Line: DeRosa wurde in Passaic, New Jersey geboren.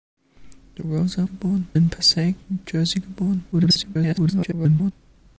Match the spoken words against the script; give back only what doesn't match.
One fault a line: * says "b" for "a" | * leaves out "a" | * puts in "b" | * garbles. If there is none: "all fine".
* says "geboren" for "wurde"
* garbles